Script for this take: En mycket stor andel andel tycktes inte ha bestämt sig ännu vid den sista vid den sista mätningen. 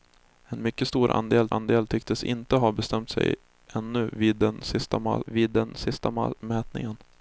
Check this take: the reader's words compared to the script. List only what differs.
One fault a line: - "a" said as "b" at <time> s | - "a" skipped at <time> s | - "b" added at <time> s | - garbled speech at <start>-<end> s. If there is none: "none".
none